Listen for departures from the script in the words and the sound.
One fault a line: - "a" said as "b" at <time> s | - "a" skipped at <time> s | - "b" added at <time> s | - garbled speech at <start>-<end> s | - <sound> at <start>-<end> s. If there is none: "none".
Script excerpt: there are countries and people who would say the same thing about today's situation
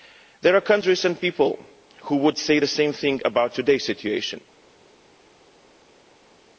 none